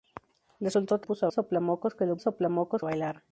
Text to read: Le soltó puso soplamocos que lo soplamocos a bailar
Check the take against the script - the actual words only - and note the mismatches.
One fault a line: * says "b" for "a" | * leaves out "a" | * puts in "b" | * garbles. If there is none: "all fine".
all fine